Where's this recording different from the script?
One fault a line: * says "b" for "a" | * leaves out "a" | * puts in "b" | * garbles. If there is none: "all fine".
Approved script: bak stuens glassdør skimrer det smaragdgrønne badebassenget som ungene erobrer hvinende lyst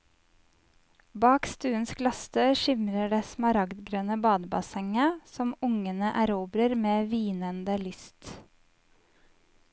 * puts in "med"